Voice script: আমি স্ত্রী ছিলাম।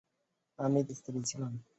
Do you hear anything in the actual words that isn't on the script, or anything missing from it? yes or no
no